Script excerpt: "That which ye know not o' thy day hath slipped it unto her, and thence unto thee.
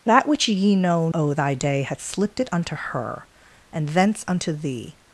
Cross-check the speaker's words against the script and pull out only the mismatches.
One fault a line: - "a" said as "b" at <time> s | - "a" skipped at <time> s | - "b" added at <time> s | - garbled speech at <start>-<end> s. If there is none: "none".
- "not" skipped at 1.1 s